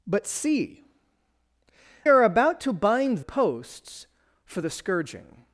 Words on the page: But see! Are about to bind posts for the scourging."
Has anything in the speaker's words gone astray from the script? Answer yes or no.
no